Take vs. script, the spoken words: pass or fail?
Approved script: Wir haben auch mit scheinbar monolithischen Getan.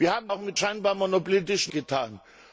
pass